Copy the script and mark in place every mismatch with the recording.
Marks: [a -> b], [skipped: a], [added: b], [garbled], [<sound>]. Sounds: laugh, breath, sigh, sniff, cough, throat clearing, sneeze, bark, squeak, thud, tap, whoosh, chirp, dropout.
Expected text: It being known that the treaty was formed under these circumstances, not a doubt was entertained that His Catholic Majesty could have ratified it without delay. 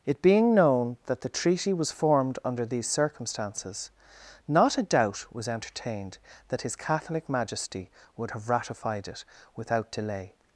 It being known that the treaty was formed under these circumstances, not a doubt was entertained that His Catholic Majesty [could -> would] have ratified it without delay.